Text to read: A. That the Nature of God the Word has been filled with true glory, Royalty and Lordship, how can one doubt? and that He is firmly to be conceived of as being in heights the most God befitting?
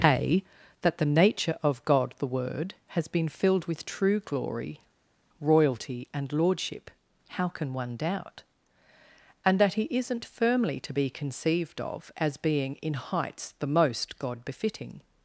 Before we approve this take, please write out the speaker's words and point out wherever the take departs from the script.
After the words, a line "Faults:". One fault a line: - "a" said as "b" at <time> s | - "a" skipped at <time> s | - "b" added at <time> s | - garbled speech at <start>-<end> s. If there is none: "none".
A. That the Nature of God the Word has been filled with true glory, Royalty and Lordship, how can one doubt? and that He isn't firmly to be conceived of as being in heights the most God befitting?
Faults:
- "is" said as "isn't" at 9.9 s